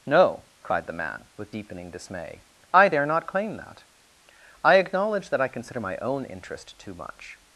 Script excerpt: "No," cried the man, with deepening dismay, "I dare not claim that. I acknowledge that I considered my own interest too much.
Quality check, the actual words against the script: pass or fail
fail